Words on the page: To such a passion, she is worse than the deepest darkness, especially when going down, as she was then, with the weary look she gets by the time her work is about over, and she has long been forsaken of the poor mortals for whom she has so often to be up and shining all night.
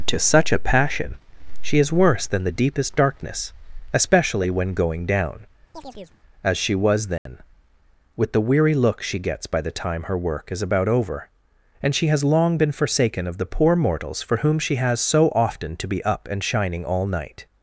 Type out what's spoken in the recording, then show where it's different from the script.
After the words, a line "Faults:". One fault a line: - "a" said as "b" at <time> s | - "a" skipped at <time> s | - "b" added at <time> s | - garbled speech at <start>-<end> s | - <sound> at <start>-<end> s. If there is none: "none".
To such a passion, she is worse than the deepest darkness, especially when going down, as she was then, with the weary look she gets by the time her work is about over, and she has long been forsaken of the poor mortals for whom she has so often to be up and shining all night.
Faults:
- chirp at 5.7-6.2 s
- dropout at 7.2-7.3 s